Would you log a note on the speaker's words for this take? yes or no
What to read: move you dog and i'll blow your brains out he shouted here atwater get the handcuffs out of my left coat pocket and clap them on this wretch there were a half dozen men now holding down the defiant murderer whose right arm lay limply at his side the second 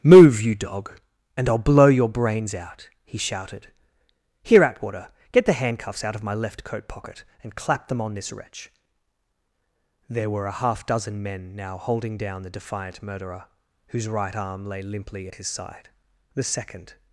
no